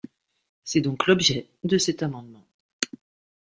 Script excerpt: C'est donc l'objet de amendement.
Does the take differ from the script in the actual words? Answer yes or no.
yes